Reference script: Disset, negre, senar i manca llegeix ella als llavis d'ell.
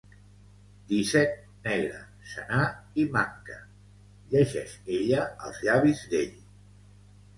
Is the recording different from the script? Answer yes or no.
no